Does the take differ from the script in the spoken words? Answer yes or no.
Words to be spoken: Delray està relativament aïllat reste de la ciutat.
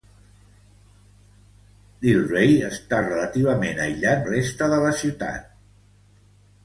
no